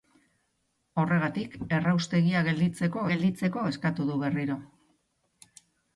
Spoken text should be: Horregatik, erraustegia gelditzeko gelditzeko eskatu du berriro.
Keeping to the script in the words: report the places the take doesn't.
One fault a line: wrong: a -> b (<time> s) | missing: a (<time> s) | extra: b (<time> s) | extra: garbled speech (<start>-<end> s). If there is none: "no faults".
no faults